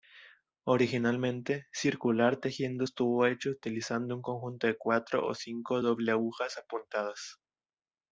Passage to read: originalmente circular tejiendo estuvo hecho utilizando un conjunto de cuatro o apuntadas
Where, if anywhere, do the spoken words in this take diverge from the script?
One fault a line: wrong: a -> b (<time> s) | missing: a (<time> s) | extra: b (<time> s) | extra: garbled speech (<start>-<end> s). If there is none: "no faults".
extra: cinco doble agujas (5.3 s)